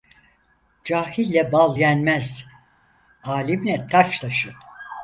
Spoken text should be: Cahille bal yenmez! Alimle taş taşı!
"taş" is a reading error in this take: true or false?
false